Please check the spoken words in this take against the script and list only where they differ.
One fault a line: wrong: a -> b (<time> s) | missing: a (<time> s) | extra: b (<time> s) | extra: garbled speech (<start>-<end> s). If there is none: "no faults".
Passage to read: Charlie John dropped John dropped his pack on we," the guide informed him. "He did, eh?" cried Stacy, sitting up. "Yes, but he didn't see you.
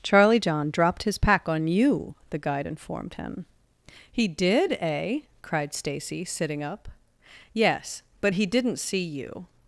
missing: John dropped (1.0 s)
wrong: we -> you (1.7 s)